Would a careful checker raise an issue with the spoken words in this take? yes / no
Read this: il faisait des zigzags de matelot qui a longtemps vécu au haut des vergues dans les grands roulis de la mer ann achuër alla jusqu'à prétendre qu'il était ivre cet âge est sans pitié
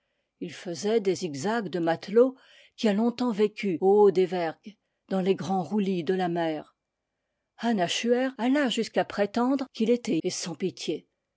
yes